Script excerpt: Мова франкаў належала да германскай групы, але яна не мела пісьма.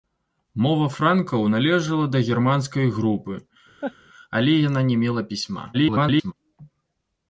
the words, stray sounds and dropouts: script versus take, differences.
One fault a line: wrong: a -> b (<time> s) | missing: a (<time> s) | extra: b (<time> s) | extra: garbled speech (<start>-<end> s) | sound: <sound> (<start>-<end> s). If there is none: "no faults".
sound: laugh (3.8-4.0 s)
extra: garbled speech (5.7-6.3 s)